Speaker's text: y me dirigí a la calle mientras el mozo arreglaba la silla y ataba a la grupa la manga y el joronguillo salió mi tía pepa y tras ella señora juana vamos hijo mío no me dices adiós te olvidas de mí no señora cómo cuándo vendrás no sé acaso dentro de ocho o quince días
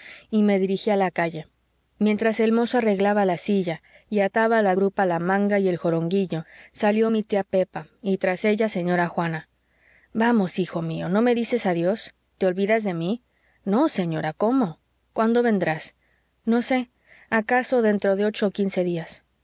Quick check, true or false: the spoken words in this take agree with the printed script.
true